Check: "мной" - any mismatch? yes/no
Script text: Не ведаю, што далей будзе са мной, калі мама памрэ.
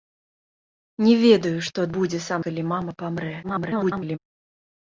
yes